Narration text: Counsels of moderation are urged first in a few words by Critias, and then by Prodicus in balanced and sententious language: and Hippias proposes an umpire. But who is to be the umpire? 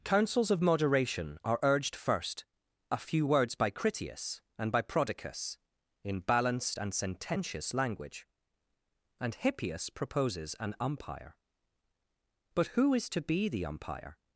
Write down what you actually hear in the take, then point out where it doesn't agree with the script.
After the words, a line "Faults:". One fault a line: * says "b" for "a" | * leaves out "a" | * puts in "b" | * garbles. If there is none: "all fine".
Counsels of moderation are urged first a few words by Critias, and by Prodicus in balanced and sententious language: and Hippias proposes an umpire. But who is to be the umpire?
Faults:
* leaves out "in"
* leaves out "then"